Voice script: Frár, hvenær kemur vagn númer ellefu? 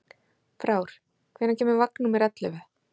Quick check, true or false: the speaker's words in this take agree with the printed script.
true